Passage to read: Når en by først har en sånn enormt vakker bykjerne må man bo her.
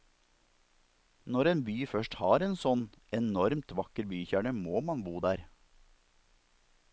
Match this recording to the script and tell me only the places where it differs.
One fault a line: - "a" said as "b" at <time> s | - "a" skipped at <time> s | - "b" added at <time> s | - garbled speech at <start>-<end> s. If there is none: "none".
- "her" said as "der" at 5.3 s